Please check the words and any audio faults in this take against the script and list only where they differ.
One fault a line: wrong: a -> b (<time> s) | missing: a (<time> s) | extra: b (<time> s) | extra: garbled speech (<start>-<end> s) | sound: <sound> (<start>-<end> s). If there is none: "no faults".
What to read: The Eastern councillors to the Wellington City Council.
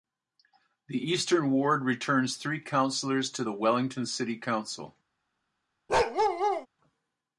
extra: ward returns three (1.5 s)
sound: bark (5.9-6.7 s)